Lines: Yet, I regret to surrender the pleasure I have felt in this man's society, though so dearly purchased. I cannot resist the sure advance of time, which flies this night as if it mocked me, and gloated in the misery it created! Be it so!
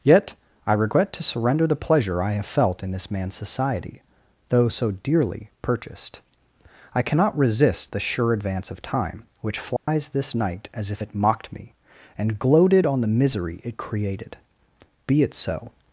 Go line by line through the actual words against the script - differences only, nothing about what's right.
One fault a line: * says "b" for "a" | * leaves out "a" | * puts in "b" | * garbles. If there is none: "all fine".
* says "on" for "in"